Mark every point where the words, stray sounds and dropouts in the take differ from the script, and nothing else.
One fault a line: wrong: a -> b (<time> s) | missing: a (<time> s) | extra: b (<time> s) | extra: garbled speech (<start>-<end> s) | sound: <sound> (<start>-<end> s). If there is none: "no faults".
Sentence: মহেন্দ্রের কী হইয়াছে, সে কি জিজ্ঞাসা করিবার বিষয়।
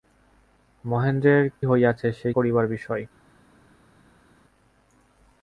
missing: কী (1.4 s)
missing: কি জিজ্ঞাসা (2.3 s)